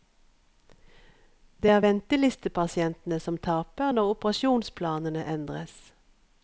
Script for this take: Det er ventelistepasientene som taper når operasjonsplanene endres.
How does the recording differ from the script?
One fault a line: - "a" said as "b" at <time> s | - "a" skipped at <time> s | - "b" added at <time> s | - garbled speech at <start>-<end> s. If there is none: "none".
none